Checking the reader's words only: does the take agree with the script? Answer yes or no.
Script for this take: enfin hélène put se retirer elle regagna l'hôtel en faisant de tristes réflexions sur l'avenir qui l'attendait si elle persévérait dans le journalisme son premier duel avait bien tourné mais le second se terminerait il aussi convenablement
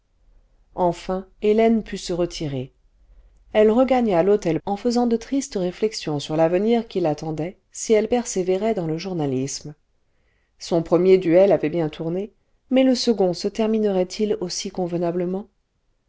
yes